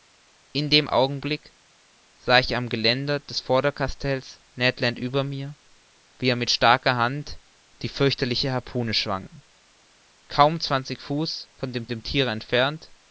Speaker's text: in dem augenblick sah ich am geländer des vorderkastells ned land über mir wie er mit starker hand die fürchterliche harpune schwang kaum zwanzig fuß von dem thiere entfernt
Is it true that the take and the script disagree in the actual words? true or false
true